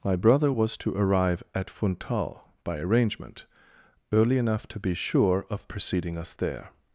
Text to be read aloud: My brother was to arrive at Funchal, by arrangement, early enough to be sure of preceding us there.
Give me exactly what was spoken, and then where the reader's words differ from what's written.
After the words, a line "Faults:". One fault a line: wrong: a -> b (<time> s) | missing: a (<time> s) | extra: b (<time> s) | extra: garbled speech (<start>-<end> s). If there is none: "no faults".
My brother was to arrive at Funchal, by arrangement, early enough to be sure of preceding us there.
Faults:
no faults